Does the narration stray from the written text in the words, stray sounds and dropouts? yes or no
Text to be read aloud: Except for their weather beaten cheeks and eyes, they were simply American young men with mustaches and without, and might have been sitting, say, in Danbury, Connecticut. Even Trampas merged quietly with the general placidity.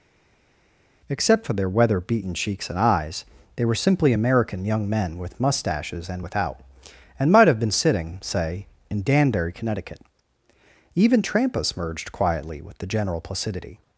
no